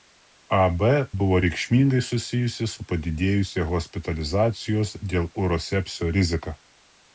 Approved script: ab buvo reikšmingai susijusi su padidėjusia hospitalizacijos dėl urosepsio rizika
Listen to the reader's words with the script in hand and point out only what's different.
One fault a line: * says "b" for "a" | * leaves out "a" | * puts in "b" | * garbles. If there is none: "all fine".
all fine